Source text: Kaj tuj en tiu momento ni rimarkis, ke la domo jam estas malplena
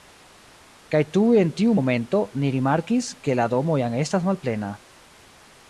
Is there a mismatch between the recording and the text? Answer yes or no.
no